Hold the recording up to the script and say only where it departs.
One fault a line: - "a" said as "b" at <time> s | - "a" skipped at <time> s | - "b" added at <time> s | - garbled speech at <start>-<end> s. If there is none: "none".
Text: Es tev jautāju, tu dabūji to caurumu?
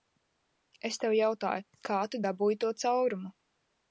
- "kā" added at 1.9 s